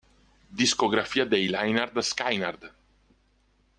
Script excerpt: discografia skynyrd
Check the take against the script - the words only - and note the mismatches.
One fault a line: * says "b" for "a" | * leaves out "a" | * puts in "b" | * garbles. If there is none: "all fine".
* puts in "dei lynyrd"